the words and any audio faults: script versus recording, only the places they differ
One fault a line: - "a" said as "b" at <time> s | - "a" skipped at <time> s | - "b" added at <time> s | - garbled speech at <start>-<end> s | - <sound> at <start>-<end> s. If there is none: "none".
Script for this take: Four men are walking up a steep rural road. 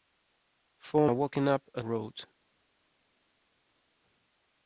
- "men" skipped at 1.1 s
- "steep rural" skipped at 1.8 s